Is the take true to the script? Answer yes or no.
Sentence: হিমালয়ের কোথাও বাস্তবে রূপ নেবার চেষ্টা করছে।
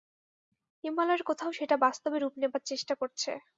no